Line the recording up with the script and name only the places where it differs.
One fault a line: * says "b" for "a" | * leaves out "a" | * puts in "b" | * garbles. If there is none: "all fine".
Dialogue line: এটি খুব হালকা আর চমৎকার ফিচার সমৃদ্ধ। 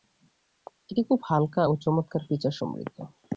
* says "ও" for "আর"